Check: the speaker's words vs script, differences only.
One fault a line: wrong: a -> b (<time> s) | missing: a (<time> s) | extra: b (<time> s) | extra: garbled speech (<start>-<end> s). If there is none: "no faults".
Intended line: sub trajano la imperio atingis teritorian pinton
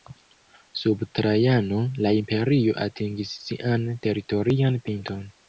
extra: sian (3.5 s)